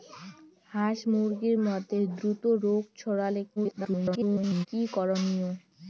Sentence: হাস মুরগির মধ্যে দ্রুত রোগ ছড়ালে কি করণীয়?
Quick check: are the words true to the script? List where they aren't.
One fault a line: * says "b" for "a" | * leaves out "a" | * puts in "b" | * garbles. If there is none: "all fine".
* garbles